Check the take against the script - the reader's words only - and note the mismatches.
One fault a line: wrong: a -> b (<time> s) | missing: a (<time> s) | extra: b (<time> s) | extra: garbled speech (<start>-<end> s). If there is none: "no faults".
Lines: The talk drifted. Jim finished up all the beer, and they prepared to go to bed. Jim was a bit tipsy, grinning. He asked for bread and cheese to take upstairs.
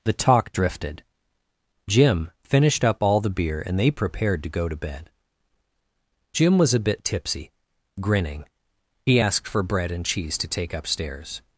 no faults